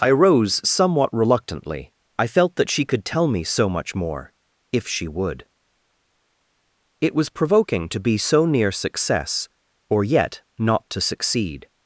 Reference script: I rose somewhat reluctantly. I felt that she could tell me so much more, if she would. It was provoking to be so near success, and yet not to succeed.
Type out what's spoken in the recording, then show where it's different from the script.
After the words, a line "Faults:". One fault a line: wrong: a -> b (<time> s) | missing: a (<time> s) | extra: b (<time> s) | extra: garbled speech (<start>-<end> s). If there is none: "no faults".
I rose somewhat reluctantly. I felt that she could tell me so much more, if she would. It was provoking to be so near success, or yet not to succeed.
Faults:
wrong: and -> or (9.9 s)